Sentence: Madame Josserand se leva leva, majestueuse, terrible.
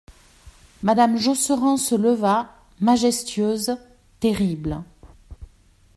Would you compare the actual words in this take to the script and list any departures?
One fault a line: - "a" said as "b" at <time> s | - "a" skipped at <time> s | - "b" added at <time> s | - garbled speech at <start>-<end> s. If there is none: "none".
- "leva" skipped at 2.5 s